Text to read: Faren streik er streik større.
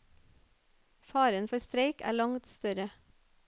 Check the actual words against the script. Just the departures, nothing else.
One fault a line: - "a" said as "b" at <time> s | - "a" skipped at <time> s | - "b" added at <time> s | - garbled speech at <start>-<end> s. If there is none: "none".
- "for" added at 1.5 s
- "streik" said as "langt" at 2.1 s